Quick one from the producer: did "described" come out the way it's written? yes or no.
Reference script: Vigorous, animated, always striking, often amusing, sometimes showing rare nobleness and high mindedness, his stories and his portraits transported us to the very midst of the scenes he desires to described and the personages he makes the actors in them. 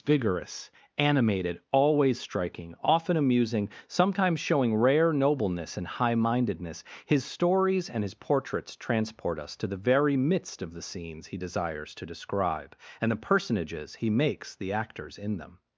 no